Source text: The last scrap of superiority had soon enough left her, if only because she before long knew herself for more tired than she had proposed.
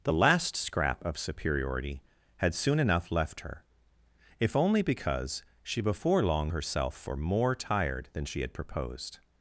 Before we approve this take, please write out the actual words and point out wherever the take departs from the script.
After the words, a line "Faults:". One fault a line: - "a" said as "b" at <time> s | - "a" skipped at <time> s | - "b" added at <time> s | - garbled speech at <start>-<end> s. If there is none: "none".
The last scrap of superiority had soon enough left her, if only because she before long herself for more tired than she had proposed.
Faults:
- "knew" skipped at 6.5 s